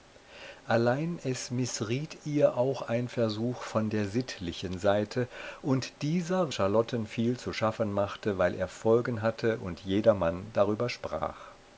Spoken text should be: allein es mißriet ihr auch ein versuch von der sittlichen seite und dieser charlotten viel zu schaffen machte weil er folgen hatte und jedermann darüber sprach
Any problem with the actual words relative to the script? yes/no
no